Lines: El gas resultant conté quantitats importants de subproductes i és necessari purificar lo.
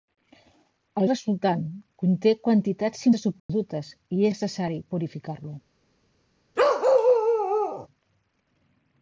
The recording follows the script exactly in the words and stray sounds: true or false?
false